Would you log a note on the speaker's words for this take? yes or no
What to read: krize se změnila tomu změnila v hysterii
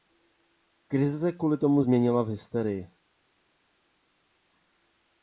yes